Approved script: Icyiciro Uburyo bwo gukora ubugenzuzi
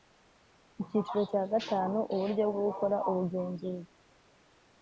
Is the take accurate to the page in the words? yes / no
no